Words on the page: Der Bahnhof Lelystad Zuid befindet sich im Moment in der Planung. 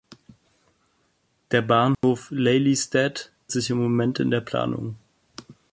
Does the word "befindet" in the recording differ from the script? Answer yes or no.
yes